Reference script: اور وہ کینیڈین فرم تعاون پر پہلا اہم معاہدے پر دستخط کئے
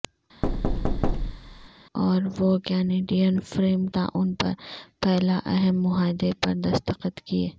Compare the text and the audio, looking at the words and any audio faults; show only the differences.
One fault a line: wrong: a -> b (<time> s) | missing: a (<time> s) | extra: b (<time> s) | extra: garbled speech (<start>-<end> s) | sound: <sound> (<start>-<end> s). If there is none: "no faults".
sound: thud (0.4-1.7 s)